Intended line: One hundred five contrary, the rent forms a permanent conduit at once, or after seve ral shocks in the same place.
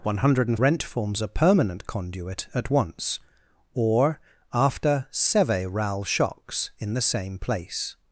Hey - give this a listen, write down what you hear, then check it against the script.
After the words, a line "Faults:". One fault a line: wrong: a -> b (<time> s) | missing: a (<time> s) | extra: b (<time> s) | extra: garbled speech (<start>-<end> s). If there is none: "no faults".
One hundred rent forms a permanent conduit at once, or after seve ral shocks in the same place.
Faults:
missing: five contrary the (0.6 s)